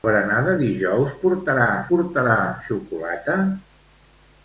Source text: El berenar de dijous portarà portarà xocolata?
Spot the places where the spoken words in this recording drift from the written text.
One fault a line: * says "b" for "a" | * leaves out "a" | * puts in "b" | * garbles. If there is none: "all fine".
all fine